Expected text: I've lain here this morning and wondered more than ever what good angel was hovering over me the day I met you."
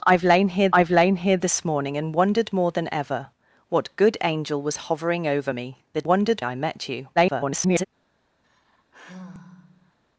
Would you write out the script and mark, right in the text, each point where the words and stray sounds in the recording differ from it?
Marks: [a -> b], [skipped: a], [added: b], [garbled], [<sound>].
I've lain here [added: I've lain here] this morning and wondered more than ever what good angel was hovering over me the [day -> wondered] I met you." [garbled] [sigh]